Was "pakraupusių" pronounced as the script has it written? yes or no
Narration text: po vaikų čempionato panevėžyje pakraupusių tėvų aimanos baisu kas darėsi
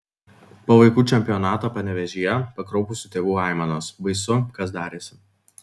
yes